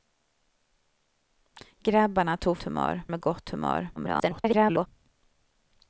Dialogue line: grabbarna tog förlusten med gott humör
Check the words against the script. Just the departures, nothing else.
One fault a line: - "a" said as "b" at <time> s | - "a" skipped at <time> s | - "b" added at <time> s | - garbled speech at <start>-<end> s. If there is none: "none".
- "förlusten" said as "humör" at 2.6 s
- garbled speech at 4.0-4.9 s